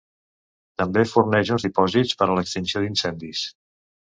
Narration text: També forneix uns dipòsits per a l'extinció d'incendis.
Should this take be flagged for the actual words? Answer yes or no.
no